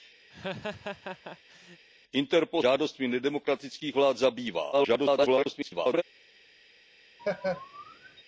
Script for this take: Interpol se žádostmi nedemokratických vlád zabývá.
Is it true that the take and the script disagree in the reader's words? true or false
true